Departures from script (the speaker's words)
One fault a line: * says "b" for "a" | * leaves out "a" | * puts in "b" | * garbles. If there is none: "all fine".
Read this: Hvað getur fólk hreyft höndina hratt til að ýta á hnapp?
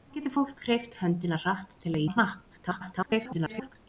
* leaves out "ýta"
* garbles